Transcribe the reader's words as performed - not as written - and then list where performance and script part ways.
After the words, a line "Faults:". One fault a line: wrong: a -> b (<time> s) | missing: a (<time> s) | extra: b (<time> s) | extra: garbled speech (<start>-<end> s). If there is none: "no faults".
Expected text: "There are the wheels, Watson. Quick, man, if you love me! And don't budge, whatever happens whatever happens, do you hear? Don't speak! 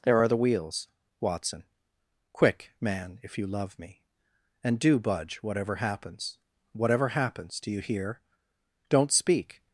"There are the wheels, Watson. Quick, man, if you love me! And do budge, whatever happens whatever happens, do you hear? Don't speak!
Faults:
wrong: don't -> do (4.8 s)